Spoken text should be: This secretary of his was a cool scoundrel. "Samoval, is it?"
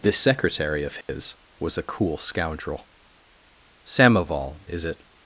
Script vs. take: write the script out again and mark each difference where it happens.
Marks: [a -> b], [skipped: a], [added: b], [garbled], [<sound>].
This secretary of his [dropout] was a cool scoundrel. "Samoval, is it?"